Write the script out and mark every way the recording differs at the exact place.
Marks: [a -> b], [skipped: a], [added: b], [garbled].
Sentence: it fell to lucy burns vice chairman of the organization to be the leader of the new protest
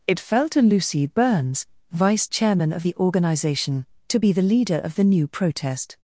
it fell to lucy burns vice chairman of the organization to be the leader of the new protest